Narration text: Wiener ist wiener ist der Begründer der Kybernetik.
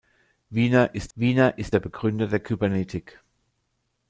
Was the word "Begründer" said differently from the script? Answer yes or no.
no